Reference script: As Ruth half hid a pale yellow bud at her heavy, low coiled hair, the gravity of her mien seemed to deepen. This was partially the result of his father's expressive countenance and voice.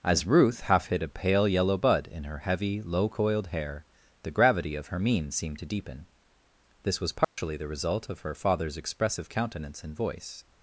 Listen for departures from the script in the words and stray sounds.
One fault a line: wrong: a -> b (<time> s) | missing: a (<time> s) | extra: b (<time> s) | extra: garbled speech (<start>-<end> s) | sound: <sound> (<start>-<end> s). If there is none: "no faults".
wrong: at -> in (2.1 s)
sound: dropout (7.2-7.4 s)
wrong: his -> her (8.2 s)